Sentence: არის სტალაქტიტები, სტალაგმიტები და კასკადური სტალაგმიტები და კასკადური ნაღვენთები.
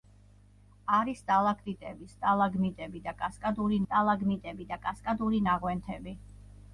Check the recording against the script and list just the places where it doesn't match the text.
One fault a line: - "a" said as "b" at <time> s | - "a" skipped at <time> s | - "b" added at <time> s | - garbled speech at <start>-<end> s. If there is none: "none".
none